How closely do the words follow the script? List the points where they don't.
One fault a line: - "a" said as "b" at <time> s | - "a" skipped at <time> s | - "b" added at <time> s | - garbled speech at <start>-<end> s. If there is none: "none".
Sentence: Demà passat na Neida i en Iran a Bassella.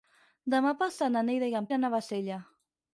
none